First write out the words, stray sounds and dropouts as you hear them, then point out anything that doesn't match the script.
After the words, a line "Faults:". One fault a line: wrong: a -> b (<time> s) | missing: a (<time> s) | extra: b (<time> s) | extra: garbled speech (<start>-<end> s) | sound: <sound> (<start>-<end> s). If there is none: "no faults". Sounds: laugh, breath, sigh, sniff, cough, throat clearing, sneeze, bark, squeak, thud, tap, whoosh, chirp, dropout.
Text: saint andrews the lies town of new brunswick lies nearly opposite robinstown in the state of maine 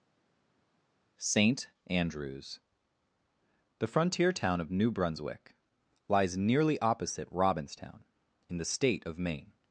saint andrews the frontier town of new brunswick lies nearly opposite robinstown in the state of maine
Faults:
wrong: lies -> frontier (3.9 s)